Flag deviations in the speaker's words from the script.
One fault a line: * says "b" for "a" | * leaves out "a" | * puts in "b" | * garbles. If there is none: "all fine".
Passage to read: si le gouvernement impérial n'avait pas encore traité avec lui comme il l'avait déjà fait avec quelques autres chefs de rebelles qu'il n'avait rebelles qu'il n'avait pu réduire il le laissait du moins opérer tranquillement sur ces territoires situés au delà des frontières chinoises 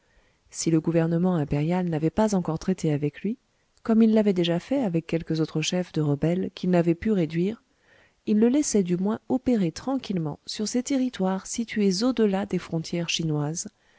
* leaves out "rebelles qu'il n'avait"